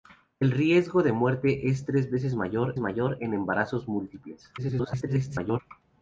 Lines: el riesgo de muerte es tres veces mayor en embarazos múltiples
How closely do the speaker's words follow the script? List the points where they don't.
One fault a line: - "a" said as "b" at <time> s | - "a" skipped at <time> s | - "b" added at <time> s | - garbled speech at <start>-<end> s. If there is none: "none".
- "mayor" added at 2.8 s
- garbled speech at 4.6-5.6 s